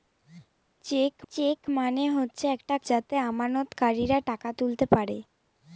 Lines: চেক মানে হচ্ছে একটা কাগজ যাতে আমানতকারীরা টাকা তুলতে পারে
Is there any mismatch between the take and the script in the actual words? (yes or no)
yes